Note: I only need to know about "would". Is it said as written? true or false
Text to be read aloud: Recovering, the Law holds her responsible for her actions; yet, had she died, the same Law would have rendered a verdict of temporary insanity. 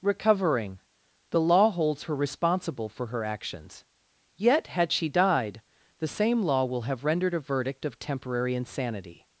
false